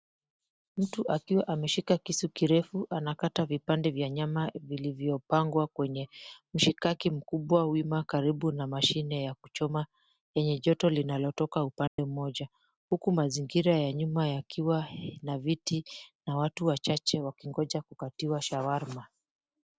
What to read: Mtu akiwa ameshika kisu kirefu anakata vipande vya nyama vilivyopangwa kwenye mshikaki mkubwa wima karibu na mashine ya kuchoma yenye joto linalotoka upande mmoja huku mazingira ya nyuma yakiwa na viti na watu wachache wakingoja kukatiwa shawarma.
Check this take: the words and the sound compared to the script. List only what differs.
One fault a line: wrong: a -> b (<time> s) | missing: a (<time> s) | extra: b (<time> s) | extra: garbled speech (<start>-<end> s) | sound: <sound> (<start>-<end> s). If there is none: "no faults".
sound: dropout (11.9-12.0 s)